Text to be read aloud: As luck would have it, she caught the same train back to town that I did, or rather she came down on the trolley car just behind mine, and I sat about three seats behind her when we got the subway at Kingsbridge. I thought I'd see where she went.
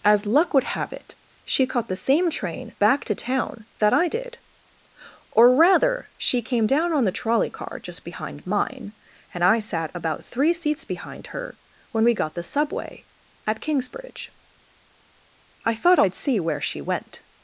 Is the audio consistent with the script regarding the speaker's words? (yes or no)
yes